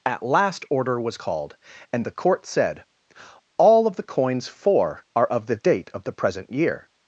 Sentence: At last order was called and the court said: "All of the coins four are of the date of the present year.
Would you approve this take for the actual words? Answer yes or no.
yes